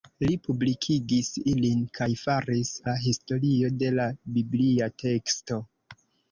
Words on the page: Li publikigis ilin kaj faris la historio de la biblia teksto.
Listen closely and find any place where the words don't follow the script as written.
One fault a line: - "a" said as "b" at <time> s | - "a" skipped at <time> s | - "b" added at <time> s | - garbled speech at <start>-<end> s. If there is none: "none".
none